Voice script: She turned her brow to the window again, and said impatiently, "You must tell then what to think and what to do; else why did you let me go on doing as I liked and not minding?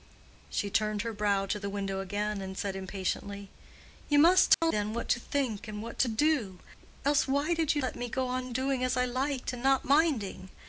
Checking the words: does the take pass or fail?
pass